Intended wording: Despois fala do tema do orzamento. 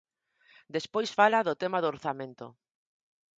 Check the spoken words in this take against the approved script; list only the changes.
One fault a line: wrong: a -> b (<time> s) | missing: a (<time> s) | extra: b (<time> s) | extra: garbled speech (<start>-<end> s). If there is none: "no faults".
no faults